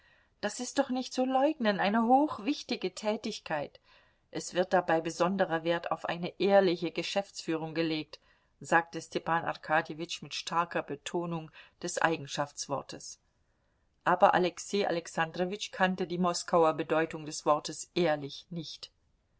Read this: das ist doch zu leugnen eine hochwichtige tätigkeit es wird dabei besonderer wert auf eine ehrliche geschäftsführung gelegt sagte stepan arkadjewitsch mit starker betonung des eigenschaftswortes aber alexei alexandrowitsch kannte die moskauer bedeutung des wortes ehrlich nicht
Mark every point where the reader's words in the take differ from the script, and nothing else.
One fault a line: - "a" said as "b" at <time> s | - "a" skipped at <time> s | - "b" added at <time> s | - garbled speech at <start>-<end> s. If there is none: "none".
- "nicht" added at 0.9 s